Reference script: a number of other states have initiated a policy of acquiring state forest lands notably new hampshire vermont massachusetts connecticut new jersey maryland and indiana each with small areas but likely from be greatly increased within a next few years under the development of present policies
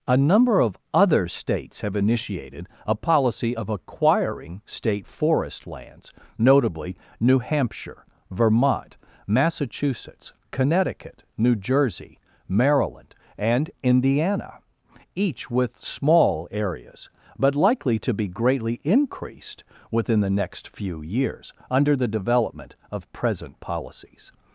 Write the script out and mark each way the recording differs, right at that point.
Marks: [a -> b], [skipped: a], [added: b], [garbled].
a number of other states have initiated a policy of acquiring state forest lands notably new hampshire vermont massachusetts connecticut new jersey maryland and indiana each with small areas but likely [from -> to] be greatly increased within [a -> the] next few years under the development of present policies